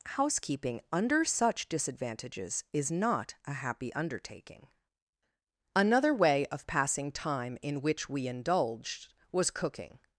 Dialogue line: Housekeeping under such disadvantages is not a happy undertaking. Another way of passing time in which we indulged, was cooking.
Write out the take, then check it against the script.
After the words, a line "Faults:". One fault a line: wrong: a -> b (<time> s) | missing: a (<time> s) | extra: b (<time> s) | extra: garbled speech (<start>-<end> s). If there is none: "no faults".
Housekeeping under such disadvantages is not a happy undertaking. Another way of passing time in which we indulged, was cooking.
Faults:
no faults